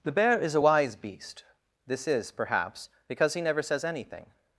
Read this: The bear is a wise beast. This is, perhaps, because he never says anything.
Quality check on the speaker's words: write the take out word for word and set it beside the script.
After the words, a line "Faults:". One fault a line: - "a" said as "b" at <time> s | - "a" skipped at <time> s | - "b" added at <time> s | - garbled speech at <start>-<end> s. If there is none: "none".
The bear is a wise beast. This is, perhaps, because he never says anything.
Faults:
none